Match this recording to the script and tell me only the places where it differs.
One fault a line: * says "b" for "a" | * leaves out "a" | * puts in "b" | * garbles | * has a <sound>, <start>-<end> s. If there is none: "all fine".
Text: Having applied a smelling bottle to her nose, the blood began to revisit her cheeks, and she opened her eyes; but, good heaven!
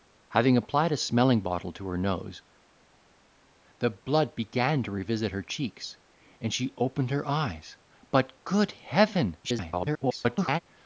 * garbles